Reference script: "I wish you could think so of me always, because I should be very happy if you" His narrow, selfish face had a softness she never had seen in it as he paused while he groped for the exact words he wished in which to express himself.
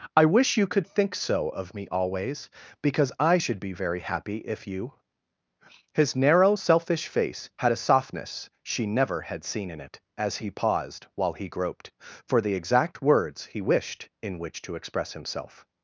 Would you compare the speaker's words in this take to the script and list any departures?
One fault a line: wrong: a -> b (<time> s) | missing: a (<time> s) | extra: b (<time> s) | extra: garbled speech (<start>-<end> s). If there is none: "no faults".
no faults